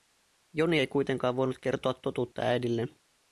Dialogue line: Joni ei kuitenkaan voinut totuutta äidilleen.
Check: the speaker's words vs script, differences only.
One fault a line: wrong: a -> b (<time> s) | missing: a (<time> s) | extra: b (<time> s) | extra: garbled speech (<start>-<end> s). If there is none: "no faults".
extra: kertoa (1.6 s)